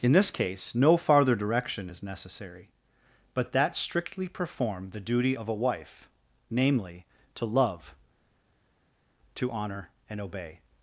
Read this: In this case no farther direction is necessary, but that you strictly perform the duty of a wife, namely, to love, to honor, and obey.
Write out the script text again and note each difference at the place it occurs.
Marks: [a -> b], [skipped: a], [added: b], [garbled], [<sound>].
In this case no farther direction is necessary, but that [skipped: you] strictly perform the duty of a wife, namely, to love, to honor, and obey.